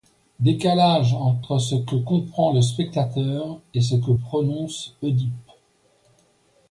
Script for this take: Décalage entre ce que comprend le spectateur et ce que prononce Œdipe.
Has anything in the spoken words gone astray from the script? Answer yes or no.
no